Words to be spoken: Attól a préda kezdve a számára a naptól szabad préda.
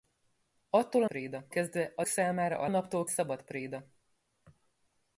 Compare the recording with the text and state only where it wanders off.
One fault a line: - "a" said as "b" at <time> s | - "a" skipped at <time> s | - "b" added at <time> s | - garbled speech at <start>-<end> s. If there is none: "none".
none